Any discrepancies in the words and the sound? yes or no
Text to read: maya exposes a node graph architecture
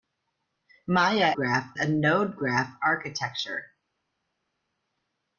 yes